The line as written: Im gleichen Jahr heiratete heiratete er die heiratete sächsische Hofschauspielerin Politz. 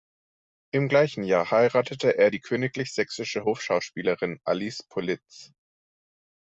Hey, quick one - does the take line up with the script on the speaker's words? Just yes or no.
no